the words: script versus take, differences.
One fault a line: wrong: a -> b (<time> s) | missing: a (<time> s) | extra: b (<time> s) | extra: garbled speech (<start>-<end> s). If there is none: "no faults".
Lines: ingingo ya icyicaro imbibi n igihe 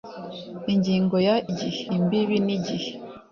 wrong: icyicaro -> igihe (1.5 s)